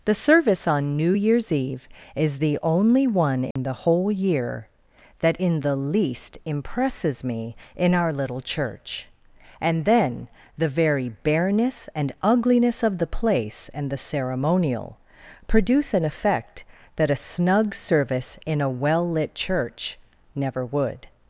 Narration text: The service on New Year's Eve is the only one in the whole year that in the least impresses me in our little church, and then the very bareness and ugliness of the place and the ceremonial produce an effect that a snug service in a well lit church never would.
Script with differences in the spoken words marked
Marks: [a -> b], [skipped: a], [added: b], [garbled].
The service on New Year's Eve is the only one in the whole year that in the least impresses me in our little church, and then the very bareness and ugliness of the place and the ceremonial produce an effect that a snug service in a well lit church never would.